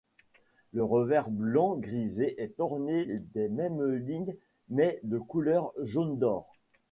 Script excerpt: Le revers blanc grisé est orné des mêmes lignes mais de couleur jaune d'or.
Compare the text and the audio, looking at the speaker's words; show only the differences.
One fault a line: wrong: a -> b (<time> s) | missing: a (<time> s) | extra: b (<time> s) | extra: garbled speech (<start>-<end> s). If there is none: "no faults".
no faults